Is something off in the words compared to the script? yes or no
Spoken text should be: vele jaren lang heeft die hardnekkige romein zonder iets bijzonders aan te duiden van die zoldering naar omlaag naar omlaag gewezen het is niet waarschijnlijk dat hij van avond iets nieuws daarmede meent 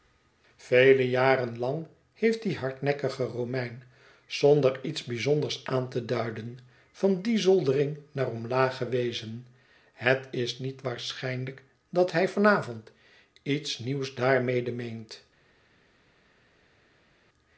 yes